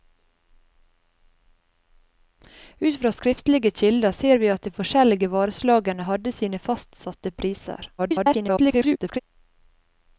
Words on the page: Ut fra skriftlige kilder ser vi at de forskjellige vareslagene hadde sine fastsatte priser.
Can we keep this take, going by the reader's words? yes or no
no